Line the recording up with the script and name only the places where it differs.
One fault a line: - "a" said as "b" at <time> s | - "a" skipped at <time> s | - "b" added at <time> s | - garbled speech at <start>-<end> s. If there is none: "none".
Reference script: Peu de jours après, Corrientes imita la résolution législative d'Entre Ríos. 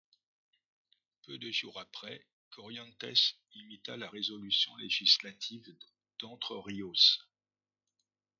none